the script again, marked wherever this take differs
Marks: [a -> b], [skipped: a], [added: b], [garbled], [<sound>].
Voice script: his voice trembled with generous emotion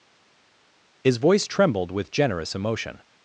his voice trembled with generous emotion